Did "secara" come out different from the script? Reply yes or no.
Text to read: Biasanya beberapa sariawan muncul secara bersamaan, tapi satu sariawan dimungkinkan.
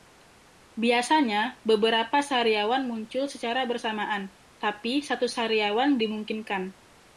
no